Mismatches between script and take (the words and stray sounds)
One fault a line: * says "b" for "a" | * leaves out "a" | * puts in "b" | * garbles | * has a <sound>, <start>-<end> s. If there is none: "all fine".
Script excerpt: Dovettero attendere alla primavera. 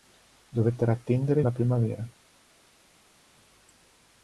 all fine